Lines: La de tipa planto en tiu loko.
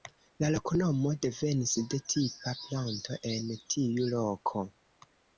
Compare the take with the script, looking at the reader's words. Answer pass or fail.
fail